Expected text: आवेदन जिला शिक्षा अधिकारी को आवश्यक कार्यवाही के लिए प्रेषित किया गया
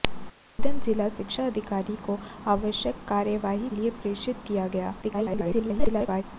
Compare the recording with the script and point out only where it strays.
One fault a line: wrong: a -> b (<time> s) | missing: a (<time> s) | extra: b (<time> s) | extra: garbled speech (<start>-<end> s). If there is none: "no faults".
missing: के (3.7 s)
extra: garbled speech (5.0-6.2 s)